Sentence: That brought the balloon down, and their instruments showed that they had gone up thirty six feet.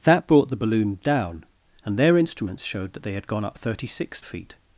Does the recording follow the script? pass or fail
pass